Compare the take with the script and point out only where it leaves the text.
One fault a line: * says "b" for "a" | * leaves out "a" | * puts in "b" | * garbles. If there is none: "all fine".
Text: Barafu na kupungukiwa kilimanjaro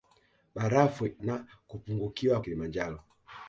all fine